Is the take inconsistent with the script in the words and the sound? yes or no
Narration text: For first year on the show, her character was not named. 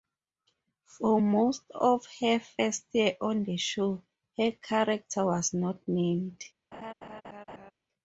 yes